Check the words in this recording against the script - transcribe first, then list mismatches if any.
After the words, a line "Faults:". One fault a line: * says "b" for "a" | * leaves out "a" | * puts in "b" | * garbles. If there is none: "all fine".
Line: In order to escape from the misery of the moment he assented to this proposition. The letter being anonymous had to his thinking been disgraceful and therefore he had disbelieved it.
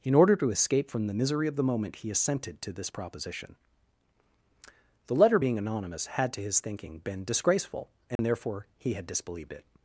In order to escape from the misery of the moment he assented to this proposition. The letter being anonymous had to his thinking been disgraceful and therefore he had disbelieved it.
Faults:
all fine